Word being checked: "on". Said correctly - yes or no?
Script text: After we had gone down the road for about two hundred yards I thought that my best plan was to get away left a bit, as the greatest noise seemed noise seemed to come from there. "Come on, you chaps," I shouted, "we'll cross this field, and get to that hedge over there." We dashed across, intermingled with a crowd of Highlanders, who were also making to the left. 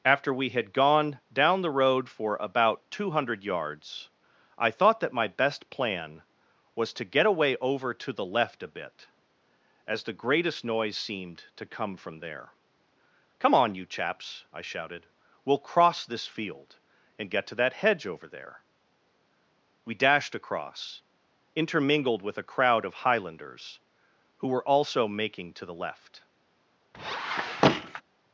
yes